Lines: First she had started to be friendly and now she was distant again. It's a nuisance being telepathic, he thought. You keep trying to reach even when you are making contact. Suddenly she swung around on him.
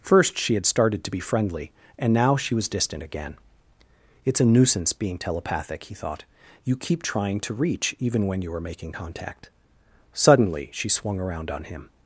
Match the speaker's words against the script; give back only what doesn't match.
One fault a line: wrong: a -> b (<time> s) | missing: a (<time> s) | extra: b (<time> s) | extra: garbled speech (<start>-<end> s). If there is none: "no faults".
no faults